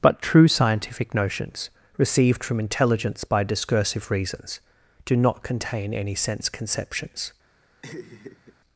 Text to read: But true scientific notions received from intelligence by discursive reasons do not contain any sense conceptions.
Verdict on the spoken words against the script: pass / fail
pass